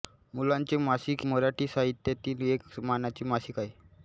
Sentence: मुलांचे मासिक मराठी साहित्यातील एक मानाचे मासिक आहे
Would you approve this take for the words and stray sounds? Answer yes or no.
yes